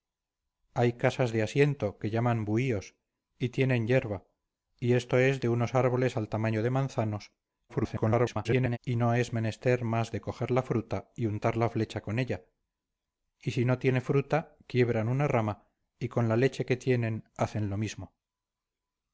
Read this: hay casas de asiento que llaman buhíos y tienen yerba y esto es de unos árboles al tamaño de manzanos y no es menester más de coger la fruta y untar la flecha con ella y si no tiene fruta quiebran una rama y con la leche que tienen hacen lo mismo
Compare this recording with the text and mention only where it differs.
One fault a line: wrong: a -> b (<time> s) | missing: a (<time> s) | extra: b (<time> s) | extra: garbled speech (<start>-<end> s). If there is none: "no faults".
extra: garbled speech (7.7-8.8 s)